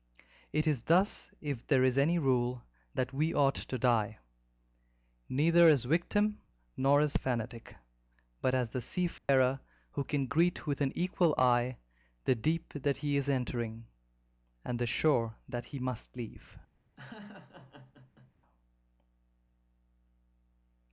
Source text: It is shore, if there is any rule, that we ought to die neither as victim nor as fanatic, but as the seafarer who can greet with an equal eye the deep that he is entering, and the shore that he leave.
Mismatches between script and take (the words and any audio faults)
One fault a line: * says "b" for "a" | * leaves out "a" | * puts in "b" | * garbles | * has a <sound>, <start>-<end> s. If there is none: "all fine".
* says "thus" for "shore"
* has a dropout, 9.2-9.3 s
* puts in "must"
* has a laugh, 17.0-18.3 s